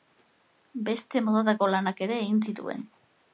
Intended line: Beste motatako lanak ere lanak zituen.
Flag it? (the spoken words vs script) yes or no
yes